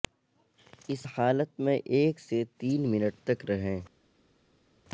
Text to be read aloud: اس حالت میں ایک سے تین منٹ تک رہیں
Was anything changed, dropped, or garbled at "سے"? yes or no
no